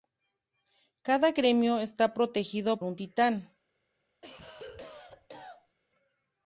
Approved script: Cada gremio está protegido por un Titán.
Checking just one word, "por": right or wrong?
wrong